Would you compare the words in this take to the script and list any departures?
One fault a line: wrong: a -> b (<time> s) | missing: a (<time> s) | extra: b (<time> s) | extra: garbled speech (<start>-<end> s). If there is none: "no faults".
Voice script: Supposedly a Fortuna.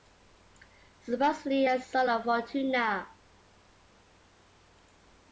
extra: son of (1.8 s)